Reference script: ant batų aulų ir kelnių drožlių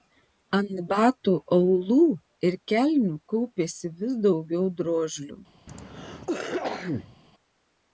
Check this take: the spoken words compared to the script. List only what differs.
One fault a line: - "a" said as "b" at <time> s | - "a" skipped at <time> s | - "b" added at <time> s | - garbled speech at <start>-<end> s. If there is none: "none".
- "kaupėsi vis daugiau" added at 3.3 s